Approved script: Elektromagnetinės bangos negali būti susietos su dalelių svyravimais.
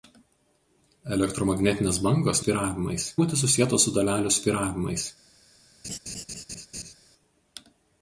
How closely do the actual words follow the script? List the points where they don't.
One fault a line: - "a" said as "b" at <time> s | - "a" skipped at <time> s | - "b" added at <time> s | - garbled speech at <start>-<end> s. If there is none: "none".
- "negali" said as "svyravimais" at 2.4 s